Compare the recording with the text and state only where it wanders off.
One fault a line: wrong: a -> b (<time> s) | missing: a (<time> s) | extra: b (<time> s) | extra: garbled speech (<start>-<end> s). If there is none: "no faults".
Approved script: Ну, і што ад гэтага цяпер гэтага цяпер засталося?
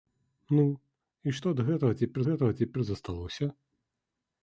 no faults